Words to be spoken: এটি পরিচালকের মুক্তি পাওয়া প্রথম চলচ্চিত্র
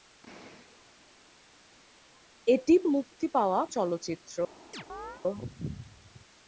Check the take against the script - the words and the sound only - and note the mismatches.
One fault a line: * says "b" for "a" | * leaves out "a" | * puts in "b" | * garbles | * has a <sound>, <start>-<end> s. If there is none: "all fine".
* leaves out "পরিচালকের"
* leaves out "প্রথম"
* has a chirp, 4.7-5.2 s